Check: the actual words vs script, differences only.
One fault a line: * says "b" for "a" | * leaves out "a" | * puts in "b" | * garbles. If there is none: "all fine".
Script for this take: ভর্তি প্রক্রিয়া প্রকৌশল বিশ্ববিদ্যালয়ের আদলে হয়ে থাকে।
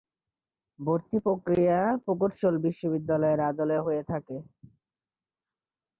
all fine